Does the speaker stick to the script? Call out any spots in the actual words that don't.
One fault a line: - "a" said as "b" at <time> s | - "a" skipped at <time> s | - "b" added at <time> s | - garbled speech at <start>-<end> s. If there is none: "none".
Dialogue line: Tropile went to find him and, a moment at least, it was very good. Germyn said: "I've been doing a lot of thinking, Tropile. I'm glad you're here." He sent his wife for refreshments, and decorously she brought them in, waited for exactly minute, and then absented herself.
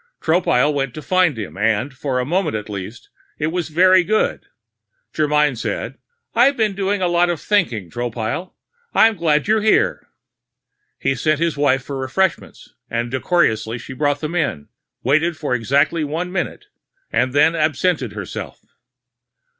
- "for" added at 1.9 s
- "one" added at 16.0 s